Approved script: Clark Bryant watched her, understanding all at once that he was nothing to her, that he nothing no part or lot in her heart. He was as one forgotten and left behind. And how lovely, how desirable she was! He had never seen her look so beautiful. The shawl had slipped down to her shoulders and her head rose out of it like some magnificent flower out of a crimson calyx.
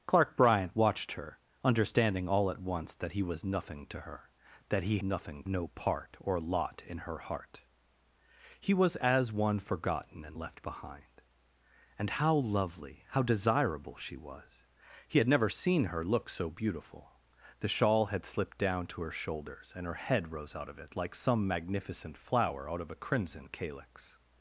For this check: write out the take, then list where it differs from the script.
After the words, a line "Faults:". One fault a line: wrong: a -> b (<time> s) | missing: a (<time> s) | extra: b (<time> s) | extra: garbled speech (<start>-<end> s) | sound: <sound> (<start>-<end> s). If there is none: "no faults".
Clark Bryant watched her, understanding all at once that he was nothing to her, that he nothing no part or lot in her heart. He was as one forgotten and left behind. And how lovely, how desirable she was! He had never seen her look so beautiful. The shawl had slipped down to her shoulders and her head rose out of it like some magnificent flower out of a crimson calyx.
Faults:
no faults